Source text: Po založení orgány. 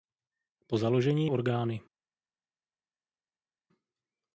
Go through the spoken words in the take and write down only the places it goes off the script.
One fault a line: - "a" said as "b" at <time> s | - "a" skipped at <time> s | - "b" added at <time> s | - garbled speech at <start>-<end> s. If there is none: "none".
none